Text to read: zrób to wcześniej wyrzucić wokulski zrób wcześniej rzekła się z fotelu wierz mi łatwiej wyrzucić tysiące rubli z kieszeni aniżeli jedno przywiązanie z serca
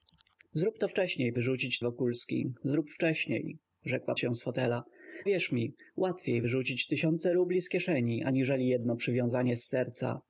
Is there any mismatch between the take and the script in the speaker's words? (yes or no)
no